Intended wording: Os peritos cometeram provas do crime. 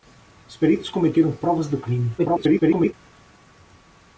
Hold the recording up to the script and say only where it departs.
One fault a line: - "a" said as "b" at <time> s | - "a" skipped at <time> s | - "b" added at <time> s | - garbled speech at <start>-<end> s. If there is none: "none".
- garbled speech at 2.2-2.9 s